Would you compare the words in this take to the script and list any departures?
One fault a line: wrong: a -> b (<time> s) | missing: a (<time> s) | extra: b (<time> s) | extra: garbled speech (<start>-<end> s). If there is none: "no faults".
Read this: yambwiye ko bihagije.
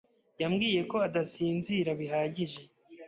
extra: adasinzira (1.1 s)